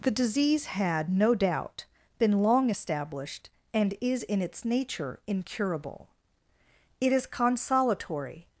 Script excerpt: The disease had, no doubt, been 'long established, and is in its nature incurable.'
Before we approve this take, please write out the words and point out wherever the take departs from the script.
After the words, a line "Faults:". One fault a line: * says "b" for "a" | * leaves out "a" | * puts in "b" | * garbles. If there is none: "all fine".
The disease had, no doubt, been 'long established, and is in its nature incurable.' It is 'consolatory
Faults:
* puts in "It is consolatory"